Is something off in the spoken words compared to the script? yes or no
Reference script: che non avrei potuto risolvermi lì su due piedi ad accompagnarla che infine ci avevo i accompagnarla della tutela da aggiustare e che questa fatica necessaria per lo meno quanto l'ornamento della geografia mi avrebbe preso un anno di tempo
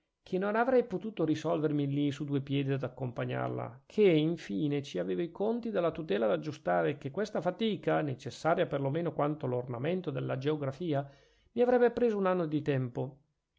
yes